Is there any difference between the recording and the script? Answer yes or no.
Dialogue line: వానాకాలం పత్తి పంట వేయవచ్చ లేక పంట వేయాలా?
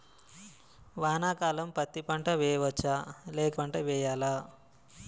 no